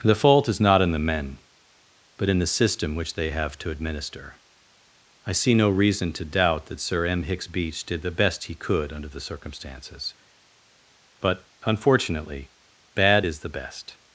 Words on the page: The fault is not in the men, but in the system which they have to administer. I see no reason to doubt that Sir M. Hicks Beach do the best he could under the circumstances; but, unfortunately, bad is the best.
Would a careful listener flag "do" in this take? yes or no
yes